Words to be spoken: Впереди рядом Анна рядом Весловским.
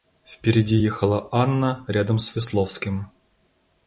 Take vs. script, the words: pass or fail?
fail